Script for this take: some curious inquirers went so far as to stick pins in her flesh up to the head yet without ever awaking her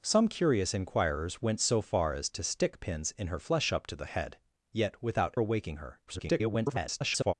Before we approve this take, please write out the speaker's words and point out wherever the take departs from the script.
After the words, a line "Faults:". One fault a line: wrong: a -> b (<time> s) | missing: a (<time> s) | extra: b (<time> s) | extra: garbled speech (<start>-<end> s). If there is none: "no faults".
some curious inquirers went so far as to stick pins in her flesh up to the head yet without awaking her [garbled]
Faults:
missing: ever (5.3 s)
extra: garbled speech (6.1-7.3 s)